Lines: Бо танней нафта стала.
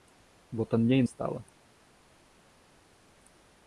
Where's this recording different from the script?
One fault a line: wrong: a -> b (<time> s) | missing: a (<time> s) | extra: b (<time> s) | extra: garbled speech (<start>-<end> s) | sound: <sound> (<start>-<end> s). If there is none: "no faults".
missing: нафта (1.0 s)